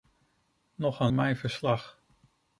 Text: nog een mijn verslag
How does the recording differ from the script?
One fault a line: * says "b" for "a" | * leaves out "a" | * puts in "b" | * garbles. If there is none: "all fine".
all fine